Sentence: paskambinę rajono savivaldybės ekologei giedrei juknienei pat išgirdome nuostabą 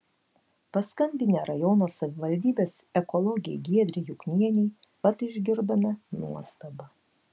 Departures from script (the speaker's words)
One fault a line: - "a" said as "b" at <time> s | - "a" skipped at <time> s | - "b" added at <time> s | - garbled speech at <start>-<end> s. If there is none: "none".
none